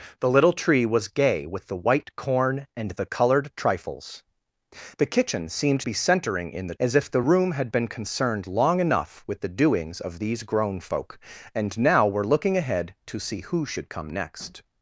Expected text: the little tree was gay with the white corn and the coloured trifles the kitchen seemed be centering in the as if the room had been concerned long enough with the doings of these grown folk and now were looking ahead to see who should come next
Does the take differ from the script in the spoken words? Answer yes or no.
no